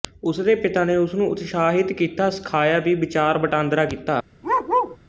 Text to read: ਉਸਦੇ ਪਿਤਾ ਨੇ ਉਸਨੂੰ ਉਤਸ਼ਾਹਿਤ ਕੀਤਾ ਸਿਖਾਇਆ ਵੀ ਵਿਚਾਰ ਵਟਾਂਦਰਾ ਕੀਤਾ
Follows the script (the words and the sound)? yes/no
no